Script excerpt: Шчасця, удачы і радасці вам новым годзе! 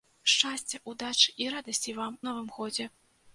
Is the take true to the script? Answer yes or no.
yes